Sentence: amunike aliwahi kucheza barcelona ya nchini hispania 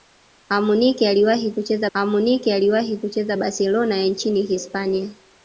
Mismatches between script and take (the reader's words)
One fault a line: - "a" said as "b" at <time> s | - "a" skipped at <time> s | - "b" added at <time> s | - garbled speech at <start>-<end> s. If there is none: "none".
- "amunike aliwahi kucheza" added at 1.9 s